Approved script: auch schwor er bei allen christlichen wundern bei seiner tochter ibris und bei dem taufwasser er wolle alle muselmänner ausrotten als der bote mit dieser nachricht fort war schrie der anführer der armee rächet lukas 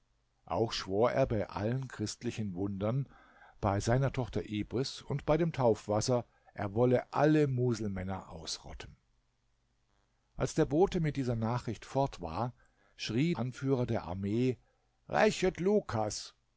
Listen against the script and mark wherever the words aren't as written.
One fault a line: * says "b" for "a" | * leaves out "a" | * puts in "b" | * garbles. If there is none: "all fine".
* leaves out "der"